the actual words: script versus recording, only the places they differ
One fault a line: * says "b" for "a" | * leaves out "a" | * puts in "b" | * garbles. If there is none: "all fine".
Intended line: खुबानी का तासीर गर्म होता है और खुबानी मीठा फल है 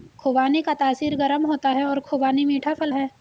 all fine